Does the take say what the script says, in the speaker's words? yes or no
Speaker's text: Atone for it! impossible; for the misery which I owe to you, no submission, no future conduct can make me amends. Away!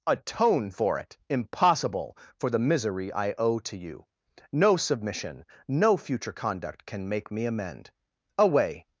no